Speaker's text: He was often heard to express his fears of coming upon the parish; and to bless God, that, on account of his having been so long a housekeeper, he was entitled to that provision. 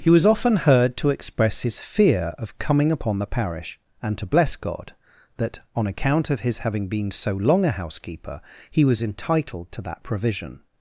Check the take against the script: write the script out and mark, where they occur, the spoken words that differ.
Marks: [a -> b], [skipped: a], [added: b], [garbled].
He was often heard to express his [fears -> fear] of coming upon the parish; and to bless God, that, on account of his having been so long a housekeeper, he was entitled to that provision.